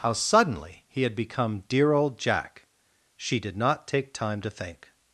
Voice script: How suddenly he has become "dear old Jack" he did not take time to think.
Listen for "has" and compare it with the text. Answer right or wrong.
wrong